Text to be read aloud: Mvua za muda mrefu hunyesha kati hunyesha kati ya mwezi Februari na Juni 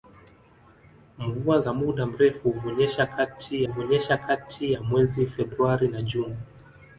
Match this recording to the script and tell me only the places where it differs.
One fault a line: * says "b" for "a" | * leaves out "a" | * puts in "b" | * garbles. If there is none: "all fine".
all fine